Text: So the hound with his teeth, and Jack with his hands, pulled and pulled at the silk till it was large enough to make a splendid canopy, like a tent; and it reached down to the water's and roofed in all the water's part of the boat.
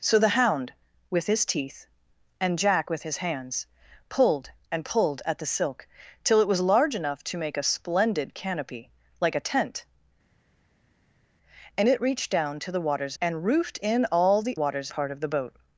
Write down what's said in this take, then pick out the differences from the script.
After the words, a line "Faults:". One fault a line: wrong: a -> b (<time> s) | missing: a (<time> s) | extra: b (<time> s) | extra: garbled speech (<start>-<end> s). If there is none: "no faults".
So the hound with his teeth, and Jack with his hands, pulled and pulled at the silk till it was large enough to make a splendid canopy, like a tent; and it reached down to the water's and roofed in all the water's part of the boat.
Faults:
no faults